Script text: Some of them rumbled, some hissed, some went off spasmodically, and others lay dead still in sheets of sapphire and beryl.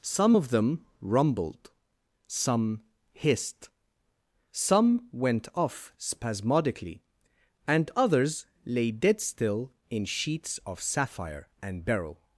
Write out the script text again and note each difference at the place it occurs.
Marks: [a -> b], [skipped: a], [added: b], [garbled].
Some of them rumbled, some hissed, some went off spasmodically, and others lay dead still in sheets of sapphire and beryl.